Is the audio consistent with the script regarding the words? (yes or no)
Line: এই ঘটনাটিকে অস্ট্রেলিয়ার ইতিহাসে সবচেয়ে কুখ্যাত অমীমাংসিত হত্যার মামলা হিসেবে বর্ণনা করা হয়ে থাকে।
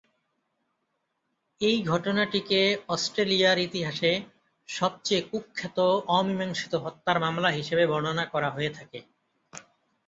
yes